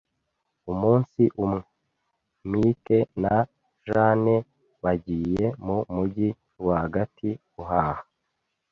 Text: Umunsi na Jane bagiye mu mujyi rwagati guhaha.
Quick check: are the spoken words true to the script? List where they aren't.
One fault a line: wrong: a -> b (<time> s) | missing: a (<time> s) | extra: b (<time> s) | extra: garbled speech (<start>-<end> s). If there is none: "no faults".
extra: umwe Mike (1.4 s)